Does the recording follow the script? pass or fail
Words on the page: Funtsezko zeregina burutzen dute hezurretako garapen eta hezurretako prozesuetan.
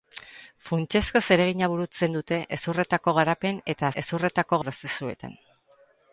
pass